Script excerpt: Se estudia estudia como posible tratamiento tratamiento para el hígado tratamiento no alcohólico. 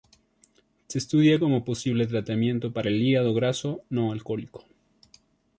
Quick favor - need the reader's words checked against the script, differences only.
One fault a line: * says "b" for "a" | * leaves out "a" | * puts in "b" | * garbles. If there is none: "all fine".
* leaves out "estudia"
* leaves out "tratamiento"
* says "graso" for "tratamiento"